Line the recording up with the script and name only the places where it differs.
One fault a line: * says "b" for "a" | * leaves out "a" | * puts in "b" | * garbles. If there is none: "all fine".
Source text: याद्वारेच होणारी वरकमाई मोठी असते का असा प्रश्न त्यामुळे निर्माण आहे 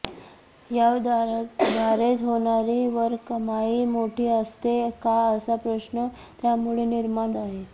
all fine